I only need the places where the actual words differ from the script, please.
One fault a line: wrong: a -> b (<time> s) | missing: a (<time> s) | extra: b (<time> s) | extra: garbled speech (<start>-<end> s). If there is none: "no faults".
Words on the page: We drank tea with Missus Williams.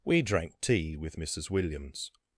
no faults